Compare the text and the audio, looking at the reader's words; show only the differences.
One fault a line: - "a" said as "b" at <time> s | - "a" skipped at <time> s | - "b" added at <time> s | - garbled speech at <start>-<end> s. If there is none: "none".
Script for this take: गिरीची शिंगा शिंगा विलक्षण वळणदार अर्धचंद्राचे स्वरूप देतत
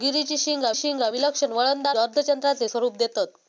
none